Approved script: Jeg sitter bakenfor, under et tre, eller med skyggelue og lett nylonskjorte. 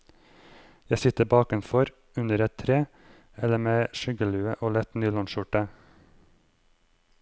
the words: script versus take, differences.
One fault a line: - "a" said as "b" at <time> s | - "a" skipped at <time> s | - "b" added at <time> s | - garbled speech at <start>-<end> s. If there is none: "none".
none